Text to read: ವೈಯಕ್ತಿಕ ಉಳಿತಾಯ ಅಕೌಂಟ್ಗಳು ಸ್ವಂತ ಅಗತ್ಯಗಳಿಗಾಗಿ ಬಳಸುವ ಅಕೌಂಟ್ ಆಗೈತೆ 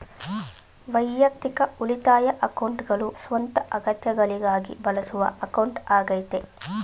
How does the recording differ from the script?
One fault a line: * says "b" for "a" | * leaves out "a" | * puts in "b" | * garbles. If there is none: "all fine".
all fine